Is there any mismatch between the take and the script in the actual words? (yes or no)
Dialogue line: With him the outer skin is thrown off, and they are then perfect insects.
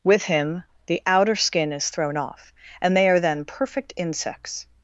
no